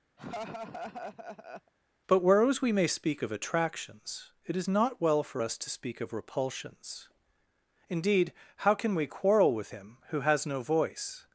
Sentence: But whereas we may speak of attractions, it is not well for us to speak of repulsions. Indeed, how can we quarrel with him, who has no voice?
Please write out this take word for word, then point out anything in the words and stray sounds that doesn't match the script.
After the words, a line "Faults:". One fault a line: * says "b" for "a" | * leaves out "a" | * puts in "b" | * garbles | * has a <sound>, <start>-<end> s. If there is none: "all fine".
But whereas we may speak of attractions, it is not well for us to speak of repulsions. Indeed, how can we quarrel with him, who has no voice?
Faults:
* has a laugh, 0.2-1.7 s